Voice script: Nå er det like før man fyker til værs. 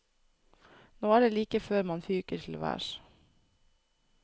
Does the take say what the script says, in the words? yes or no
yes